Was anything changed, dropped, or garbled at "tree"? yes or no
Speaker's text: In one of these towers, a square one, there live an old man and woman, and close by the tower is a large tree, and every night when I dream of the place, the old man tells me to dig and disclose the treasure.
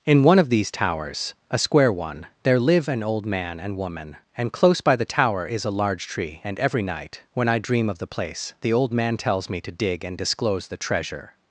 no